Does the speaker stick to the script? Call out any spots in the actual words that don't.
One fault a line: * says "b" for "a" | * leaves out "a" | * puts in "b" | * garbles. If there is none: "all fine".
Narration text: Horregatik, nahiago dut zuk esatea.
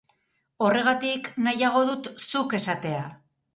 all fine